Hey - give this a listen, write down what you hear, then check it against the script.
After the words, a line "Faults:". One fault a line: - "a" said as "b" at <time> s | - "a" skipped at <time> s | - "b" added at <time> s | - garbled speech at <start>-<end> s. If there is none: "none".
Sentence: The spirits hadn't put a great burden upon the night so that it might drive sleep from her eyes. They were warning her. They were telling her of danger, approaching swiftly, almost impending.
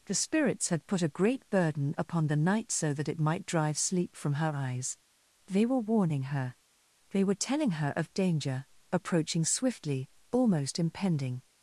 The spirits had put a great burden upon the night so that it might drive sleep from her eyes. They were warning her. They were telling her of danger, approaching swiftly, almost impending.
Faults:
- "hadn't" said as "had" at 0.7 s